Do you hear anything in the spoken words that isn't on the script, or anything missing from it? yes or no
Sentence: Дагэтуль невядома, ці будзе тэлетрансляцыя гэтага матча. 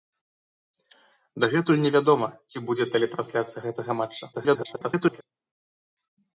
yes